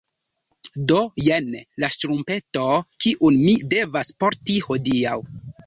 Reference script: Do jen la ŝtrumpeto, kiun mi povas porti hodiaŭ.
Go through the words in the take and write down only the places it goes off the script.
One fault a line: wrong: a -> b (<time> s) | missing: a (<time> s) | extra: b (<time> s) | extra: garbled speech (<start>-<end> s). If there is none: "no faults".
wrong: povas -> devas (3.8 s)